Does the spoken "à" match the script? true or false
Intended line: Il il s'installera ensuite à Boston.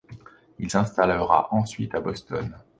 true